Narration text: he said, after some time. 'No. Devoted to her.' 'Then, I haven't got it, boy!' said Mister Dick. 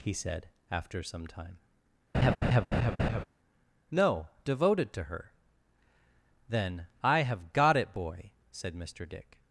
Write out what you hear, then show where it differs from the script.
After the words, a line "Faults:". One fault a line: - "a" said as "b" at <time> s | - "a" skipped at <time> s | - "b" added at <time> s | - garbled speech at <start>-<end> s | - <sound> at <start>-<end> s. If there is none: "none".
he said, after some time. 'No. Devoted to her.' 'Then, I have got it, boy!' said Mister Dick.
Faults:
- laugh at 2.1-3.2 s
- "haven't" said as "have" at 7.2 s